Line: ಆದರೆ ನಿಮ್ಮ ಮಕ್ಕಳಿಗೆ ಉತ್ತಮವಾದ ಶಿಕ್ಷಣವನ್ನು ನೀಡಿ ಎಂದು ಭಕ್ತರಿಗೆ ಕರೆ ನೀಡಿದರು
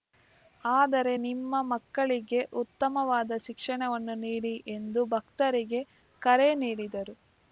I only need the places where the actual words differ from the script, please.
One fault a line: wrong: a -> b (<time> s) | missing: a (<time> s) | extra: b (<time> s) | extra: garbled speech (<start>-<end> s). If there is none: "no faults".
no faults